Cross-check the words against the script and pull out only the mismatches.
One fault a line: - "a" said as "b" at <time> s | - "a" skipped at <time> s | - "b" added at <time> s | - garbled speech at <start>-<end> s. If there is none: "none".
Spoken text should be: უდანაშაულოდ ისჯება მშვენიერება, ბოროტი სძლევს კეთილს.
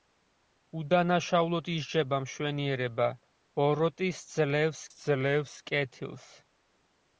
- "სძლევს" added at 4.9 s